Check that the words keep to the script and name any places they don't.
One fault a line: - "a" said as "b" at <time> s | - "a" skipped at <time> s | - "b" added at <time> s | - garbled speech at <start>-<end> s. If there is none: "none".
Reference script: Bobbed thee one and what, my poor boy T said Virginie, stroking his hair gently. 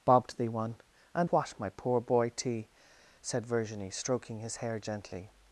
none